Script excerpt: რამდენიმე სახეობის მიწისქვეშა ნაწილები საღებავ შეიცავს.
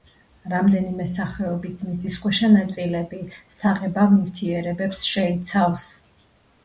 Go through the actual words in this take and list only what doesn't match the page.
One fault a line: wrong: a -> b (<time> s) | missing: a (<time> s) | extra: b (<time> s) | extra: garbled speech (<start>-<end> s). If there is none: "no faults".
extra: ნივთიერებებს (4.2 s)